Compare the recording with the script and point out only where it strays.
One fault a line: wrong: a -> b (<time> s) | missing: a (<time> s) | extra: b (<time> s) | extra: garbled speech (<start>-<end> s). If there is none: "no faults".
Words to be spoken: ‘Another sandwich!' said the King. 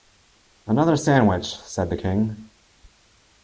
no faults